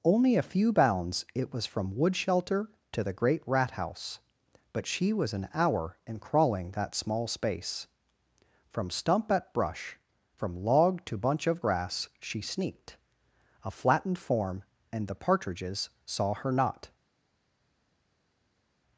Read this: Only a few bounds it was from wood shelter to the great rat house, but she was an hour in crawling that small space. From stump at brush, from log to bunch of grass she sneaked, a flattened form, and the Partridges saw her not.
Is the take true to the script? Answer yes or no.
yes